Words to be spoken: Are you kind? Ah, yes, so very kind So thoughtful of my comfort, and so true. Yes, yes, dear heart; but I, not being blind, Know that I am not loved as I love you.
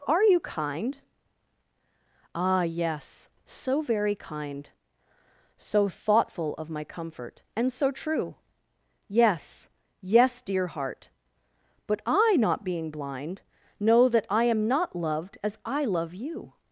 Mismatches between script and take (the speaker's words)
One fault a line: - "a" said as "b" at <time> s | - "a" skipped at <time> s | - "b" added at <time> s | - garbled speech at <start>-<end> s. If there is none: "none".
none